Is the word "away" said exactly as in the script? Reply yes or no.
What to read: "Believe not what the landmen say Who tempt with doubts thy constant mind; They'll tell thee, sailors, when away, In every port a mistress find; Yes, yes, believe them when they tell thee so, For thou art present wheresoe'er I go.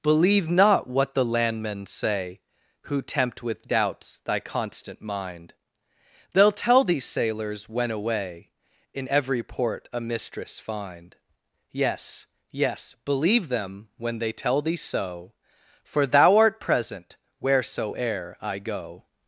yes